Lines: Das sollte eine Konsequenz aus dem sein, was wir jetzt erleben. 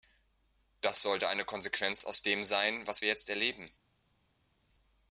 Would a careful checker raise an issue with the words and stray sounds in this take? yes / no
no